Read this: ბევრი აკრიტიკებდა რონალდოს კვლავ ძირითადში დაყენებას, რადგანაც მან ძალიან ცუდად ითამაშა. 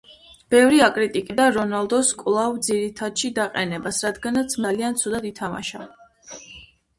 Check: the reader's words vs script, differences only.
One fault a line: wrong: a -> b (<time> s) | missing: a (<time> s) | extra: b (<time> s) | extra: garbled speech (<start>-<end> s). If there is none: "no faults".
missing: მან (4.6 s)